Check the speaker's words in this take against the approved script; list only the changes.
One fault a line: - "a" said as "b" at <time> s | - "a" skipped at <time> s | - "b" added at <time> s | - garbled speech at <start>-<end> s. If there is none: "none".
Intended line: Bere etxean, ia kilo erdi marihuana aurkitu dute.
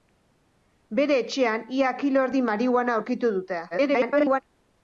- garbled speech at 3.7-4.4 s